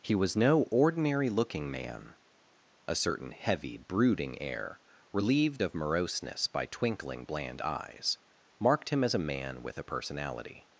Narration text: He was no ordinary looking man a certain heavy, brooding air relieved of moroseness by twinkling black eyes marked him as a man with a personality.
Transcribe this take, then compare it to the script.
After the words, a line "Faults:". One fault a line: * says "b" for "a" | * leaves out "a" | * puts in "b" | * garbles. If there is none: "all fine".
He was no ordinary looking man a certain heavy, brooding air relieved of moroseness by twinkling bland eyes marked him as a man with a personality.
Faults:
* says "bland" for "black"